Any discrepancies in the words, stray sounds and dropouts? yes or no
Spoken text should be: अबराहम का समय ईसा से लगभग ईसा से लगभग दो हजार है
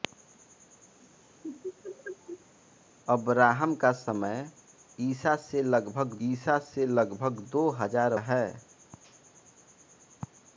yes